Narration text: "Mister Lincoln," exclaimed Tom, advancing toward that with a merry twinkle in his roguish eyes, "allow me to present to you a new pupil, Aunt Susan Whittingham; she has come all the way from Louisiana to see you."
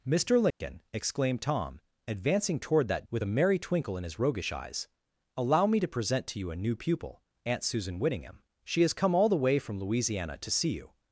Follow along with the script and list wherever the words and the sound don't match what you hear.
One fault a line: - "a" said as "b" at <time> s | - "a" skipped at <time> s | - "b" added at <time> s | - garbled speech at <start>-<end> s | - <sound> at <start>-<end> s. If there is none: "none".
- dropout at 0.5-0.6 s